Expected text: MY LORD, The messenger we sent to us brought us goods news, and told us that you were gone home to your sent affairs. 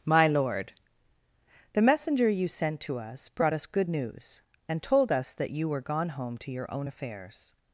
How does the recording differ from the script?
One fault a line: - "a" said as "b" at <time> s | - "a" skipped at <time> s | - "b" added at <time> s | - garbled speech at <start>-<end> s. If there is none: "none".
- "we" said as "you" at 2.3 s
- "goods" said as "good" at 3.7 s
- "sent" said as "own" at 6.7 s